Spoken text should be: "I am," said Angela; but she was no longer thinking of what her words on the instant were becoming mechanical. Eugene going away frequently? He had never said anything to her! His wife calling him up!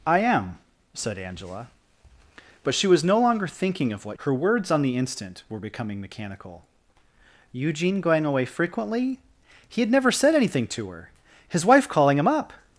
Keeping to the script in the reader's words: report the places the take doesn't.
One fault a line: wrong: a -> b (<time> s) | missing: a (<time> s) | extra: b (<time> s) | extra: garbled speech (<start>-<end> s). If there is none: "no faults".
no faults